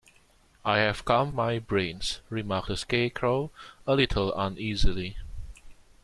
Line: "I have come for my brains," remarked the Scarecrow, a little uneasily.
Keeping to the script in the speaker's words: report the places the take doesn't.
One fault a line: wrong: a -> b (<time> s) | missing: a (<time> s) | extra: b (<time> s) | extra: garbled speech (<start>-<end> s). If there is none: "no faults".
missing: for (1.3 s)